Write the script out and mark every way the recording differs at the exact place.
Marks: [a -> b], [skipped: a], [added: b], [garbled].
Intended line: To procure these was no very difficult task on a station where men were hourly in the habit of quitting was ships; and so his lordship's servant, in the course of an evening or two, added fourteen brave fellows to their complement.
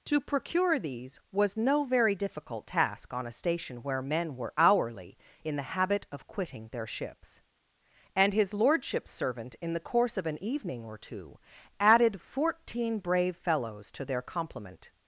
To procure these was no very difficult task on a station where men were hourly in the habit of quitting [was -> their] ships; and [skipped: so] his lordship's servant, in the course of an evening or two, added fourteen brave fellows to their complement.